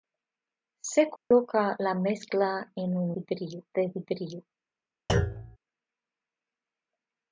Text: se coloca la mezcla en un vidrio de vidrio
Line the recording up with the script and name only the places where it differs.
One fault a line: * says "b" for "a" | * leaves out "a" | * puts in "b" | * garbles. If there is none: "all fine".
all fine